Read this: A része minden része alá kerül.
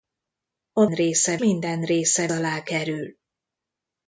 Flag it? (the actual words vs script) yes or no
no